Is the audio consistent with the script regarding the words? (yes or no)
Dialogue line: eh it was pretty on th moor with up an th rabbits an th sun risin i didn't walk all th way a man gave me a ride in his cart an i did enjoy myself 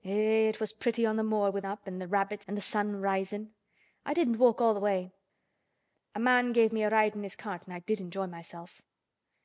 yes